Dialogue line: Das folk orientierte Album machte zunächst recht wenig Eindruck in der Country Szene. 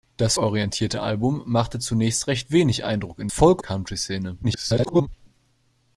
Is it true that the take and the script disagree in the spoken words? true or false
true